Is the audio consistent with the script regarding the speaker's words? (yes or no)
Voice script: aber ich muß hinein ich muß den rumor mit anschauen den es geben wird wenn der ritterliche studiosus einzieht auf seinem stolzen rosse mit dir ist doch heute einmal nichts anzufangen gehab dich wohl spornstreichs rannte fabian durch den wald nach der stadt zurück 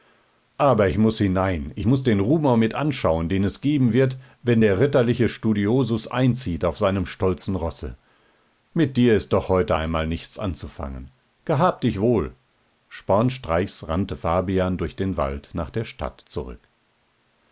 yes